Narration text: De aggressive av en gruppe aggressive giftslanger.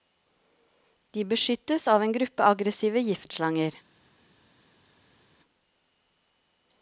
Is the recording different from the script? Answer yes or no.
yes